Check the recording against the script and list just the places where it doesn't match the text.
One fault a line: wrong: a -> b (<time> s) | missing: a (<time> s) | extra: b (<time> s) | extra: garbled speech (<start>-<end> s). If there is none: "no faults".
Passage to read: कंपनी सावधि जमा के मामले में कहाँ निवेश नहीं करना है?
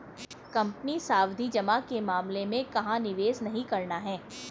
no faults